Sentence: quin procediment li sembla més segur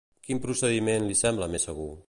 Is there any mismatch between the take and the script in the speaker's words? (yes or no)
no